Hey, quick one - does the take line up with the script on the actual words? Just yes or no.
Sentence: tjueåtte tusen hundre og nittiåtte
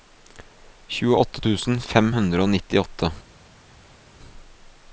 no